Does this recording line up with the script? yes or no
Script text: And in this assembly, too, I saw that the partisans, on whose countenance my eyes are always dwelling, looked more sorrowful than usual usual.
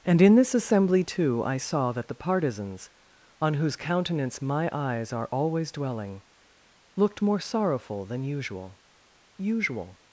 yes